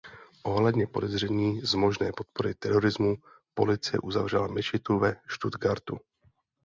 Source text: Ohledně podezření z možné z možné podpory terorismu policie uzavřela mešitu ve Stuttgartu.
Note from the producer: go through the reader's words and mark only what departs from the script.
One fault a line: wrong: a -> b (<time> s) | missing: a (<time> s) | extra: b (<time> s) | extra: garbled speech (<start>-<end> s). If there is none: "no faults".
missing: z možné (2.1 s)